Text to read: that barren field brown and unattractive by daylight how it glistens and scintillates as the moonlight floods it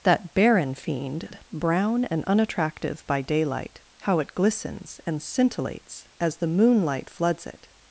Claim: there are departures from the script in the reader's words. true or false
true